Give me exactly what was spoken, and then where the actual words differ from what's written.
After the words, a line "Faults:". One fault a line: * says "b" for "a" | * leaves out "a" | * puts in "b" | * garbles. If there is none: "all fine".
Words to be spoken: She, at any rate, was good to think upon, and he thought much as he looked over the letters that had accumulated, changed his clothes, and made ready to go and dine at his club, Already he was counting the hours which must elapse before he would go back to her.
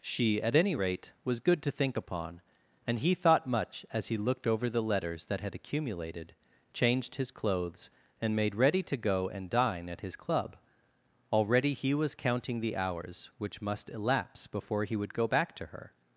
She, at any rate, was good to think upon, and he thought much as he looked over the letters that had accumulated, changed his clothes, and made ready to go and dine at his club, Already he was counting the hours which must elapse before he would go back to her.
Faults:
all fine